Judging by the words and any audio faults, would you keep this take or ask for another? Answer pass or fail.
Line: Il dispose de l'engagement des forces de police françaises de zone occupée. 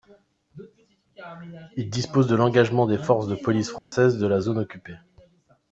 fail